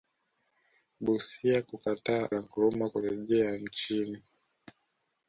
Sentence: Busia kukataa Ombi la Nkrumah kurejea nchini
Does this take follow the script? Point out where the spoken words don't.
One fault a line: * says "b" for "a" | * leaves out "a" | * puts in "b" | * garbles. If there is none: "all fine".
* leaves out "Ombi"